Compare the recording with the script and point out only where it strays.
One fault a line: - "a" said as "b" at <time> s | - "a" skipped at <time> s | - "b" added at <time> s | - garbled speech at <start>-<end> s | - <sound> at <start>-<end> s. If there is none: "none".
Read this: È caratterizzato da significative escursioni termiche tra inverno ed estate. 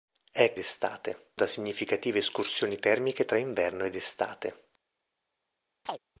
- "caratterizzato" said as "estate" at 0.6 s
- chirp at 5.9-6.0 s